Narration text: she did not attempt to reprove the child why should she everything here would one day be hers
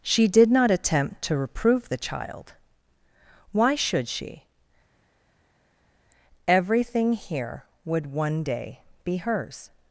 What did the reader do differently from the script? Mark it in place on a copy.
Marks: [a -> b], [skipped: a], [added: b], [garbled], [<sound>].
she did not attempt to reprove the child why should she everything here would one day be hers